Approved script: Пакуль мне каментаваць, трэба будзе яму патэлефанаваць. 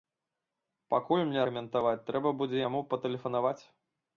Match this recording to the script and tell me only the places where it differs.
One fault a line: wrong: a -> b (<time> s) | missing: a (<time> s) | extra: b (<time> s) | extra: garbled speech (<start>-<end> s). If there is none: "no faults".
no faults